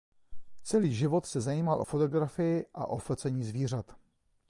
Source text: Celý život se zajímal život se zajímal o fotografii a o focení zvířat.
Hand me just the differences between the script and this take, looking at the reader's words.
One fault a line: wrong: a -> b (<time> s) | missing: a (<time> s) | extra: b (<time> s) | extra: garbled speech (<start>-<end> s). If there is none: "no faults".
missing: život se zajímal (1.8 s)